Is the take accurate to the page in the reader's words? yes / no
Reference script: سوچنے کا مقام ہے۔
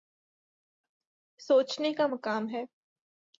yes